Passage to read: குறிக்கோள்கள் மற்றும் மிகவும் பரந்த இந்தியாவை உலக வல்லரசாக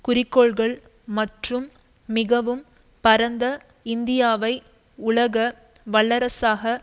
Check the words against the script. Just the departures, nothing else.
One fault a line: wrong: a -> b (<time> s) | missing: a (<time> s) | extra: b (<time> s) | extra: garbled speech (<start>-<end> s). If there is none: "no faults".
no faults